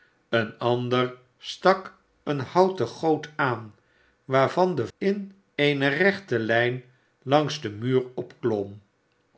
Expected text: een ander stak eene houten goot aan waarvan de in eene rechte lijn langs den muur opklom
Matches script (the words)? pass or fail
pass